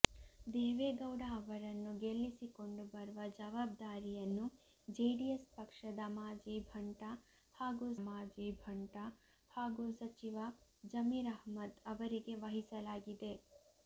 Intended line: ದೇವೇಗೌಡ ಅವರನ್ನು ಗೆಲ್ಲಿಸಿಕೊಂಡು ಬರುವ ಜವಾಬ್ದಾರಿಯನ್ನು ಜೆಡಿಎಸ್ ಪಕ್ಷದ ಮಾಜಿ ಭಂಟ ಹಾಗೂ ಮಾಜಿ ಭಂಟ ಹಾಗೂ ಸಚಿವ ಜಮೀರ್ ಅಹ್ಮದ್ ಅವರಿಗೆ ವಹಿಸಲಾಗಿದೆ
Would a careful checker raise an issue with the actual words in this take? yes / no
no